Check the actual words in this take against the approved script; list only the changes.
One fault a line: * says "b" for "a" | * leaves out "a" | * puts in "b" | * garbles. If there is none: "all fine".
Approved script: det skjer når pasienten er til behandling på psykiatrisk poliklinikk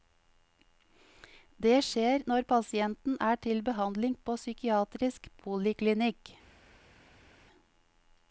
all fine